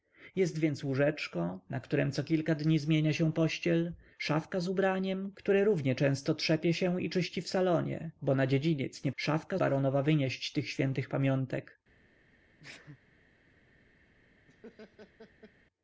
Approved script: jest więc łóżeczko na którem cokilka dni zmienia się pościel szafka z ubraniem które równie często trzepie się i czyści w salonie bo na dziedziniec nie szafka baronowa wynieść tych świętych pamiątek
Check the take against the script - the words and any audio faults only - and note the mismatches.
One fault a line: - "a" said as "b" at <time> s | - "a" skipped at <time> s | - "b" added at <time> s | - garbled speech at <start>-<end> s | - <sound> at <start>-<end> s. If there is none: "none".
- sneeze at 12.6-13.0 s
- laugh at 14.5-15.5 s